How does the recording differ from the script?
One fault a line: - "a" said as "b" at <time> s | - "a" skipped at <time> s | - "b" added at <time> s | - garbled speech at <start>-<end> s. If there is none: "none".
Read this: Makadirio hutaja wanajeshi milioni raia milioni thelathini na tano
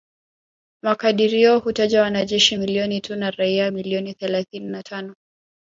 - "tu na" added at 3.0 s